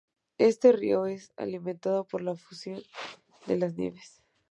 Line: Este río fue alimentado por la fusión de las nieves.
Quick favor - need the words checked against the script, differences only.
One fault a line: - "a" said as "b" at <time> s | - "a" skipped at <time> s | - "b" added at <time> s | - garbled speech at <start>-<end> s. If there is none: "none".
- "fue" said as "es" at 1.1 s